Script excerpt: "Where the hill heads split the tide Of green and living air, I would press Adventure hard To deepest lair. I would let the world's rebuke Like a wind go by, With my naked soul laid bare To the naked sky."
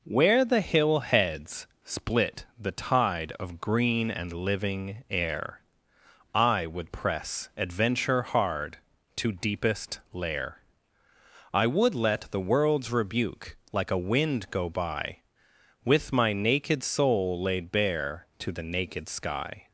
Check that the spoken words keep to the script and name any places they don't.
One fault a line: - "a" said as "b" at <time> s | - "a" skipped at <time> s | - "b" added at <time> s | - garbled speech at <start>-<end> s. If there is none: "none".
none